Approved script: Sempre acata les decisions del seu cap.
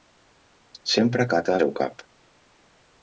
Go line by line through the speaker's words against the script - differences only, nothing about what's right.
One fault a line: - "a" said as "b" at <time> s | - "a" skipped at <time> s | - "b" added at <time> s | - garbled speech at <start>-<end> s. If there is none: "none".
- "les decisions del" skipped at 1.6 s